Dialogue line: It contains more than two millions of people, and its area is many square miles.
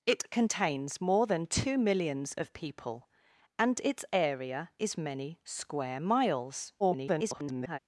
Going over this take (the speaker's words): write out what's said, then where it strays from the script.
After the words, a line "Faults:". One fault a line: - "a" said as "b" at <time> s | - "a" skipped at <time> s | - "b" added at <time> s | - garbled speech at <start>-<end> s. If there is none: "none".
It contains more than two millions of people, and its area is many square miles. [garbled]
Faults:
- garbled speech at 6.8-7.8 s